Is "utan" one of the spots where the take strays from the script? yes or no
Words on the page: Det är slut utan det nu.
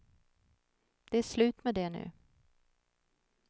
yes